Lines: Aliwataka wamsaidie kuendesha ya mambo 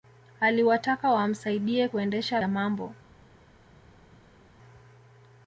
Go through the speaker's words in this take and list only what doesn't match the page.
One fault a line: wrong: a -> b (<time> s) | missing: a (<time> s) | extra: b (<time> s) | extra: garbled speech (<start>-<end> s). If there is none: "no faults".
no faults